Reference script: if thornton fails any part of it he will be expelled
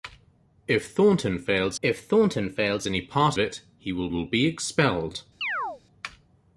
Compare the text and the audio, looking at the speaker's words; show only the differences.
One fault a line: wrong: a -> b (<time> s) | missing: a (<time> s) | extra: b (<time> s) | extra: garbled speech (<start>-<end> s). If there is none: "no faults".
extra: if thornton fails (1.8 s)
missing: of (3.4 s)
extra: will (4.1 s)